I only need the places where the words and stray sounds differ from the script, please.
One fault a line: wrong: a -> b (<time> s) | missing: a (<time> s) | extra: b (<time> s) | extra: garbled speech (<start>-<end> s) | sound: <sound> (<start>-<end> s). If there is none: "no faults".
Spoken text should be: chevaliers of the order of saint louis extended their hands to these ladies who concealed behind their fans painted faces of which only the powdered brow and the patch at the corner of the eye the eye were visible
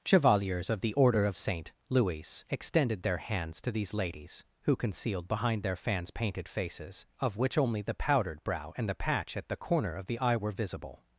missing: the eye (10.4 s)